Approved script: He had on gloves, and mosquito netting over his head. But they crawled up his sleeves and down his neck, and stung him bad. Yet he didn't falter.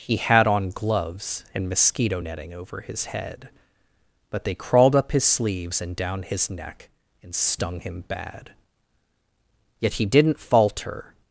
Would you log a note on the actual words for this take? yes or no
no